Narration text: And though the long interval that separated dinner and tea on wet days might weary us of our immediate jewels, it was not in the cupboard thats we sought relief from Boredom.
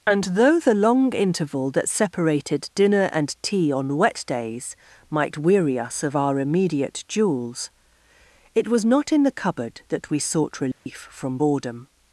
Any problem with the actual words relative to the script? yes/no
yes